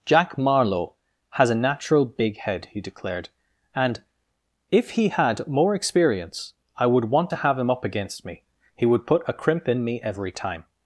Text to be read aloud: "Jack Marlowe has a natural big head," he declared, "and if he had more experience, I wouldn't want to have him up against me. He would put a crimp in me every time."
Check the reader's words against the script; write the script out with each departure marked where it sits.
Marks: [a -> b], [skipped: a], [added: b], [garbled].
"Jack Marlowe has a natural big head," he declared, "and if he had more experience, I [wouldn't -> would] want to have him up against me. He would put a crimp in me every time."